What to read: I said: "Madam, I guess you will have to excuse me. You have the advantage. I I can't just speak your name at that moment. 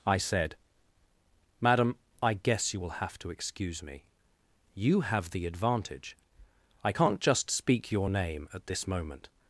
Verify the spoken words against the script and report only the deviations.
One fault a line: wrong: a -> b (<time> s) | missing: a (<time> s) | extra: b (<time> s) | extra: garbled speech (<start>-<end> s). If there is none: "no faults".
missing: I (6.9 s)
wrong: that -> this (8.7 s)